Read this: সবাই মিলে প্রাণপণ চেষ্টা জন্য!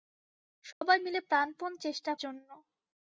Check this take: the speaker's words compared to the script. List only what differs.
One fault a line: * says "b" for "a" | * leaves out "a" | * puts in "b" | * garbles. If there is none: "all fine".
all fine